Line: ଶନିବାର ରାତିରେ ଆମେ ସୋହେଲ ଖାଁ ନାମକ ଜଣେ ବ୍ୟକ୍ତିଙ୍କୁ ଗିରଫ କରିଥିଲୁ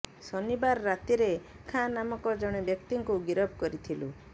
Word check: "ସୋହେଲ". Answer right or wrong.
wrong